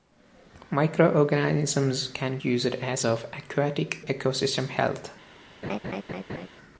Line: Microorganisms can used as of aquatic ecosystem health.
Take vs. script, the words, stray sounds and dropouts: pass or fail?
fail